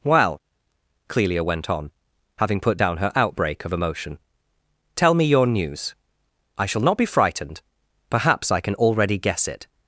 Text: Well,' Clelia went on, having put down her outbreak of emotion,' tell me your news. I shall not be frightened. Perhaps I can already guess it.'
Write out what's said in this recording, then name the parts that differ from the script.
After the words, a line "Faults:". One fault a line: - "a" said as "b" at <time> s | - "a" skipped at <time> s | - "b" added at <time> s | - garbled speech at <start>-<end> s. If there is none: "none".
Well,' Clelia went on, having put down her outbreak of emotion,' tell me your news. I shall not be frightened. Perhaps I can already guess it.'
Faults:
none